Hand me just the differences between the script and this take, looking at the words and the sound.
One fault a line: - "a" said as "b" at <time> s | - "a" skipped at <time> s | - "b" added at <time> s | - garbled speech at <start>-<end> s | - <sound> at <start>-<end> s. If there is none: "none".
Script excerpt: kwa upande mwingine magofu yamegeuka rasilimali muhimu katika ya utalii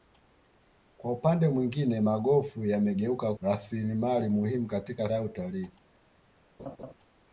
- laugh at 6.6-6.9 s